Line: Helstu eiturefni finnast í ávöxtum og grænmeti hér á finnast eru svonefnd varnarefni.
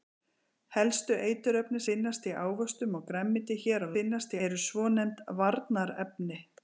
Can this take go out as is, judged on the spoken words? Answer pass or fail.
pass